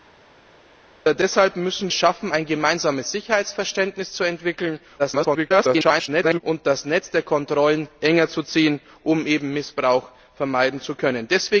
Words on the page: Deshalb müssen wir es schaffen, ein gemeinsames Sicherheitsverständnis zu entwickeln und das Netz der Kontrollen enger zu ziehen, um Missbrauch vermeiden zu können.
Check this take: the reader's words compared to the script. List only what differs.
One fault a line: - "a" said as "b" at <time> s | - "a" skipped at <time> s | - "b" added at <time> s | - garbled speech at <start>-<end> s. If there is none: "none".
- "wir" skipped at 1.9 s
- garbled speech at 5.0-6.4 s